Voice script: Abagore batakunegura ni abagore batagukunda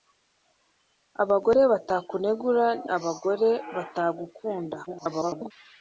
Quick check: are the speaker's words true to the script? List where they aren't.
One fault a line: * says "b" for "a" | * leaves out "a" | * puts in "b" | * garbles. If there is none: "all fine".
* leaves out "ni"
* garbles